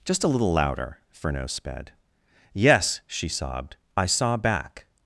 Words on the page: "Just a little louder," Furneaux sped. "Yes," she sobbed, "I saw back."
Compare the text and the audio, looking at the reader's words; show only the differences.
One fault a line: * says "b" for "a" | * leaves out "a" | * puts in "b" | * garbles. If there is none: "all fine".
all fine